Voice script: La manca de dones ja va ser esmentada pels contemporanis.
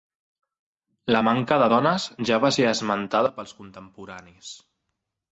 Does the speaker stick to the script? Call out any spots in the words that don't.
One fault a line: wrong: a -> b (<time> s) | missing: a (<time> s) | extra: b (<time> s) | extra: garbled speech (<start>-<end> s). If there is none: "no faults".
no faults